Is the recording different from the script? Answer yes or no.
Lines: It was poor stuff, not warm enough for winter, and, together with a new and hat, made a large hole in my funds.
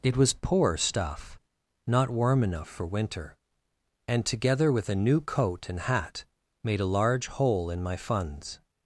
yes